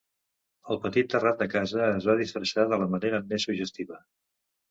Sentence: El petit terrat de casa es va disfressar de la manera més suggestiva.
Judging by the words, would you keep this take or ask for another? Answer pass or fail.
pass